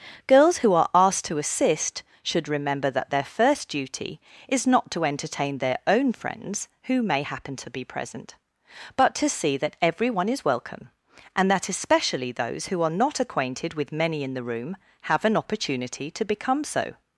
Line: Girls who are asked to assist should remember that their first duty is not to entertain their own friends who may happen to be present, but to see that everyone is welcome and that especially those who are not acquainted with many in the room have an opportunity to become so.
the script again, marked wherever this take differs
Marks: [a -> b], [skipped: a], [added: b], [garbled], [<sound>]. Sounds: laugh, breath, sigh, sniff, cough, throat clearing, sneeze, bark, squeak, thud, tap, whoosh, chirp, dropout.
Girls who are asked to assist should remember that their first duty is not to entertain their own friends who may happen to be present, but to see that everyone is welcome and that especially those who are not acquainted with many in the room have an opportunity to become so.